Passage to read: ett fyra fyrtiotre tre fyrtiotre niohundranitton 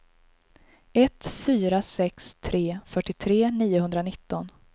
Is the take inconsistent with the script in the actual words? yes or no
yes